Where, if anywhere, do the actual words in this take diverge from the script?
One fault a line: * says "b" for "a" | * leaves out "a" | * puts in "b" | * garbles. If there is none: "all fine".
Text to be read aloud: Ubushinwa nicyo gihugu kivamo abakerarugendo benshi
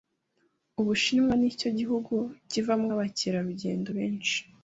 all fine